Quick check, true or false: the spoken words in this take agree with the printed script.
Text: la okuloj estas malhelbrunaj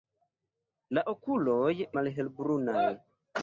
false